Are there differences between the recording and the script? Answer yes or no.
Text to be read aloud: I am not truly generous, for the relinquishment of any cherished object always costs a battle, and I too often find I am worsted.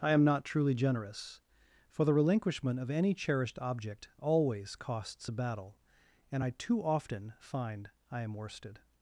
no